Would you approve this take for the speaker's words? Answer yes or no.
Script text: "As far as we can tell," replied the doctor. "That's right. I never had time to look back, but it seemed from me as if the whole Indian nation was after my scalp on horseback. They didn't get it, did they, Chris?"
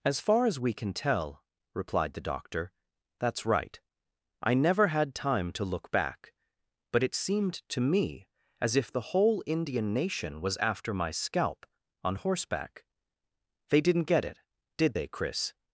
no